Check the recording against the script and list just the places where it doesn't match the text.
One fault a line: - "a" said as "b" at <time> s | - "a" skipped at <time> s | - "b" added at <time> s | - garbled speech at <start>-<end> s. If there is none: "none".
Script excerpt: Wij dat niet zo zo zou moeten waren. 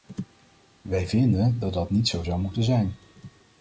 - "vinden" added at 1.1 s
- "dat" added at 1.7 s
- "zo" skipped at 2.2 s
- "waren" said as "zijn" at 2.6 s